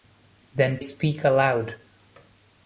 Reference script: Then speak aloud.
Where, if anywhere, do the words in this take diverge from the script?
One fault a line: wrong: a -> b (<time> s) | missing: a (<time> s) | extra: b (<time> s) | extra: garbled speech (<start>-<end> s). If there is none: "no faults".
no faults